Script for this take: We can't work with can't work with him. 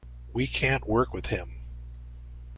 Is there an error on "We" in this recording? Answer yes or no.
no